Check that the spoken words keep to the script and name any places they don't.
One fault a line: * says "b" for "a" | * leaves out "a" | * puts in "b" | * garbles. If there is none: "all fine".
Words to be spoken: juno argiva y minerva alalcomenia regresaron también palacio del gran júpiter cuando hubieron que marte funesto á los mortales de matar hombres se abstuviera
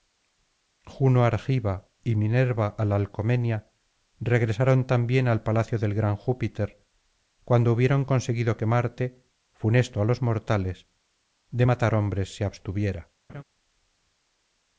* puts in "al"
* puts in "conseguido"